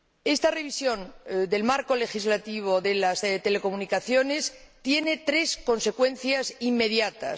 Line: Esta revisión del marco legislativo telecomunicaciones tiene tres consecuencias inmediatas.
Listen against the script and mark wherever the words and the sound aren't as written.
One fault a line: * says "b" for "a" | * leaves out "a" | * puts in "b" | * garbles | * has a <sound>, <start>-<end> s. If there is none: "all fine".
* puts in "de las"